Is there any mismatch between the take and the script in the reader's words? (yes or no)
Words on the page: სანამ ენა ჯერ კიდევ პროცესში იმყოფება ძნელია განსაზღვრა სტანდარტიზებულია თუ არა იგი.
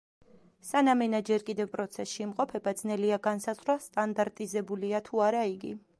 no